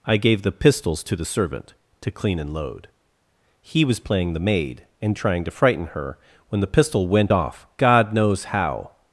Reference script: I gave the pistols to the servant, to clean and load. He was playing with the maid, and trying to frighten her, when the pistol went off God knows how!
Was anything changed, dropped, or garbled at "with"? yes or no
yes